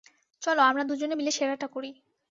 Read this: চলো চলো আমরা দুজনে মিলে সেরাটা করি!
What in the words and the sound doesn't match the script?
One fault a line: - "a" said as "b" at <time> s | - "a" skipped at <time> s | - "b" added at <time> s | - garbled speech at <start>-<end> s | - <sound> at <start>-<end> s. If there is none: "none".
- "চলো" skipped at 0.6 s